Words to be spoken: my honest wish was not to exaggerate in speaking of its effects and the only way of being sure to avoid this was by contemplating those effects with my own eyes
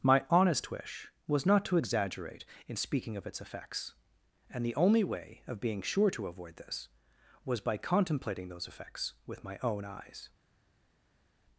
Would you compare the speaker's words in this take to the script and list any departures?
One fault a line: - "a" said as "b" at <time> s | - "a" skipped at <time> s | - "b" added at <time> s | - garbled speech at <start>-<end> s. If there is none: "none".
none